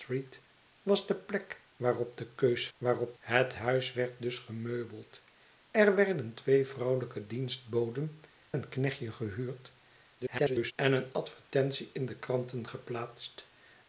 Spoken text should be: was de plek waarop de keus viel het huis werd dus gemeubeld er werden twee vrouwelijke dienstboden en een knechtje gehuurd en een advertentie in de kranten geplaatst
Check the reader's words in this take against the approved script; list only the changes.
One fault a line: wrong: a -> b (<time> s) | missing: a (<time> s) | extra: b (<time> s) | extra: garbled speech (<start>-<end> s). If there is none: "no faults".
wrong: viel -> waarop (2.8 s)
missing: en (8.2 s)
extra: garbled speech (10.2-10.7 s)